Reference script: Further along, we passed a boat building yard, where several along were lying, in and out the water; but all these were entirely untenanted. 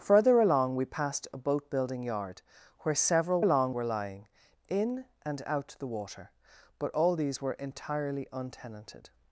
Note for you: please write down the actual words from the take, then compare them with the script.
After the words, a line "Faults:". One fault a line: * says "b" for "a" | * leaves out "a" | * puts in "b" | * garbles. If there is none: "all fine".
Further along, we passed a boat building yard, where several along were lying, in and out the water; but all these were entirely untenanted.
Faults:
all fine